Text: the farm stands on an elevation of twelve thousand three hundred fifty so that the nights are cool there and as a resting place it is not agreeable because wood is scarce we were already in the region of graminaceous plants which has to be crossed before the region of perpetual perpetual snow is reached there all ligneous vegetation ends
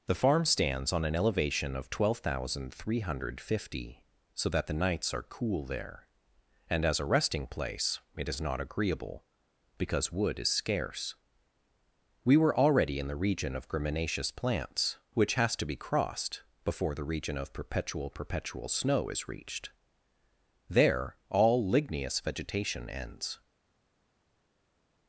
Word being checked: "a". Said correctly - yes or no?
yes